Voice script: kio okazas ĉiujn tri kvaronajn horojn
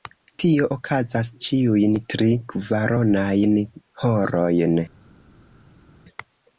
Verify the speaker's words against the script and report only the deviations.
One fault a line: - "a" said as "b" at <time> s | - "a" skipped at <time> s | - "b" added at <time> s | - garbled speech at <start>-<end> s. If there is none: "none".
- "kio" said as "tio" at 0.4 s